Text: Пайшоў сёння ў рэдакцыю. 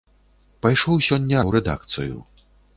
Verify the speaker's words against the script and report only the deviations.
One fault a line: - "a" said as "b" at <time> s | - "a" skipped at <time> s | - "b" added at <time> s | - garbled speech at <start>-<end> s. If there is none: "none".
none